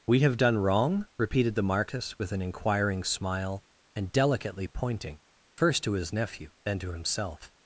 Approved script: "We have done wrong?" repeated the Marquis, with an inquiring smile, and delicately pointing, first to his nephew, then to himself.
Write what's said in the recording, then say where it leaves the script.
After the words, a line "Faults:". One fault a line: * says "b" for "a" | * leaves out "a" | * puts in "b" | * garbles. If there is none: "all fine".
"We have done wrong?" repeated the Marquis, with an inquiring smile, and delicately pointing, first to his nephew, then to himself.
Faults:
all fine